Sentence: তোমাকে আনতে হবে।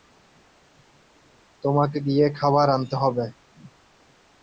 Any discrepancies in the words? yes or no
yes